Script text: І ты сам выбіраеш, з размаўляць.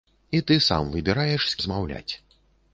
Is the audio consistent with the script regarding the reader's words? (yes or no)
yes